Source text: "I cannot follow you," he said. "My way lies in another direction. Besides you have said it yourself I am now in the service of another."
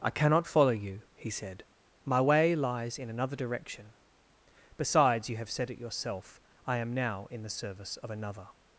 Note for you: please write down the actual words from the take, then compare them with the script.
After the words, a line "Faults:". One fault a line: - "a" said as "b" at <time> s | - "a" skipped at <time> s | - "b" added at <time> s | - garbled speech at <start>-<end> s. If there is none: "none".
"I cannot follow you," he said. "My way lies in another direction. Besides you have said it yourself I am now in the service of another."
Faults:
none